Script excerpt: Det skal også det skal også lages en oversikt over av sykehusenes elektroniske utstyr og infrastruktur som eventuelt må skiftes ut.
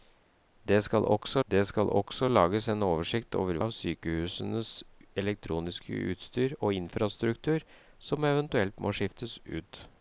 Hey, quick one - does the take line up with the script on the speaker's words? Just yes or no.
yes